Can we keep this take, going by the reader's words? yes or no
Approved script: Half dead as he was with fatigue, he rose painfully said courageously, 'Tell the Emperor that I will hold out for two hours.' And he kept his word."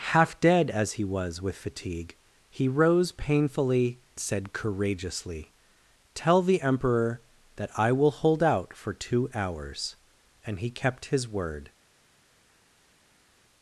yes